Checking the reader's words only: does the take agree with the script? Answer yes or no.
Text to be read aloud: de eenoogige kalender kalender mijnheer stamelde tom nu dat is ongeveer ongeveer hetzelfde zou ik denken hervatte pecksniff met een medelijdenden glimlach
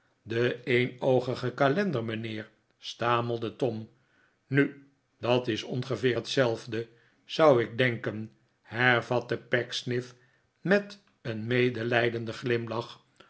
no